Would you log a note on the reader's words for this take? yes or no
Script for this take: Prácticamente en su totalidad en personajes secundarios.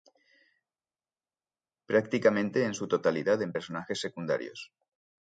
no